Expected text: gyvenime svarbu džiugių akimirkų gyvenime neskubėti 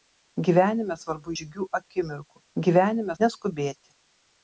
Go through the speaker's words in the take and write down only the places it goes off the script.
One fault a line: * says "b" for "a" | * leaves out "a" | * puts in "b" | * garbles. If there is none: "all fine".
all fine